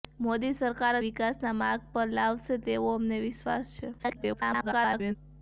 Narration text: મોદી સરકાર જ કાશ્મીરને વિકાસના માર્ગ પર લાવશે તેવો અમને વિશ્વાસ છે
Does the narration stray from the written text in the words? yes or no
yes